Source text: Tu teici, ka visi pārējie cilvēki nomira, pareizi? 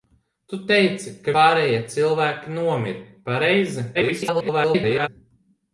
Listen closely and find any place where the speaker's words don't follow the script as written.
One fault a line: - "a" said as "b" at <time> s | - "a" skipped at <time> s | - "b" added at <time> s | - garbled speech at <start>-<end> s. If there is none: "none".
- "visi" skipped at 1.4 s
- garbled speech at 3.9-5.1 s